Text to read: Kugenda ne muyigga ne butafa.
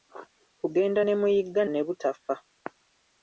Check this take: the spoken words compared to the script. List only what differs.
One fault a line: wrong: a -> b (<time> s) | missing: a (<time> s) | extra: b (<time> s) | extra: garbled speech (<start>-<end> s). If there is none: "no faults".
no faults